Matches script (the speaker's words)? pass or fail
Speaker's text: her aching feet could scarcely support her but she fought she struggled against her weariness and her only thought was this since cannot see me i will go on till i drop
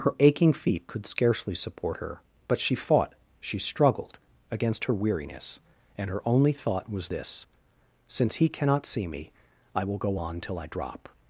fail